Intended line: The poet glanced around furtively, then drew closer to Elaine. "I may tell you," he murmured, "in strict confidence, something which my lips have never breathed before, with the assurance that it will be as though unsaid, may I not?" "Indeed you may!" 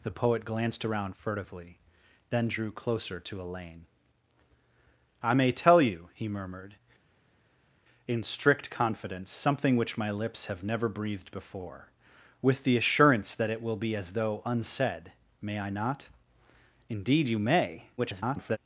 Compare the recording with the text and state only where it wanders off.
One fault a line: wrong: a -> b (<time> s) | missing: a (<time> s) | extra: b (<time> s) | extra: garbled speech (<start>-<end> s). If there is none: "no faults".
extra: garbled speech (18.0-18.6 s)